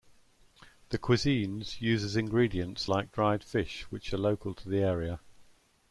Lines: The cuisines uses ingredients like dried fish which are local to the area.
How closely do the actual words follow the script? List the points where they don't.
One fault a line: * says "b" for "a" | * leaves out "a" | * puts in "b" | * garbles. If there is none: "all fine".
all fine